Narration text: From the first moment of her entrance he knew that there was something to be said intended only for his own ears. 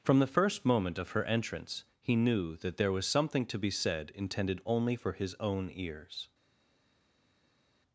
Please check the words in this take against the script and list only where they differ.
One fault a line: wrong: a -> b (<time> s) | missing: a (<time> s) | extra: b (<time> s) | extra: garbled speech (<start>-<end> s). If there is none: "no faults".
no faults